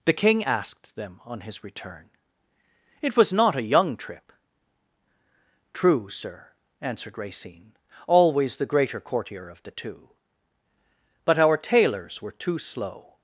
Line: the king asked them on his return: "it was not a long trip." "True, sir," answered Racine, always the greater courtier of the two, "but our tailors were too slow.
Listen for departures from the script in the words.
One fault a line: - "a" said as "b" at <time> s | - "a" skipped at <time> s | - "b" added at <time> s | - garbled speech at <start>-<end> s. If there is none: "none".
- "long" said as "young" at 3.6 s